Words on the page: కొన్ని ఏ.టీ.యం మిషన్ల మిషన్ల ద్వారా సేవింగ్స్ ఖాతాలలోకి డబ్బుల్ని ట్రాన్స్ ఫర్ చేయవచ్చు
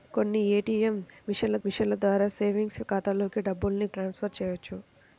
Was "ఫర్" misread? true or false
false